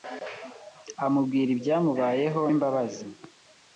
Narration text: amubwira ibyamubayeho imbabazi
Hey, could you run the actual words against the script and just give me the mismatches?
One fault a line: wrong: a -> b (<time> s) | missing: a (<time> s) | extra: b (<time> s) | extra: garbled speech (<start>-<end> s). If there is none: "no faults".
no faults